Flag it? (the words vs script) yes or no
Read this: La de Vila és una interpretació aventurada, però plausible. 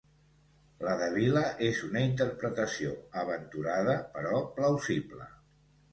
no